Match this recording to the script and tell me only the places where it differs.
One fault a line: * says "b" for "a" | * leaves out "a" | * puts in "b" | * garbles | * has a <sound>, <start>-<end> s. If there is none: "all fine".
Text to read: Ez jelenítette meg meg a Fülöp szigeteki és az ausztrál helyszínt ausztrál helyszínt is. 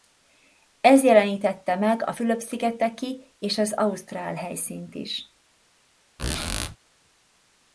* leaves out "meg"
* leaves out "ausztrál helyszínt"
* has a squeak, 6.2-6.8 s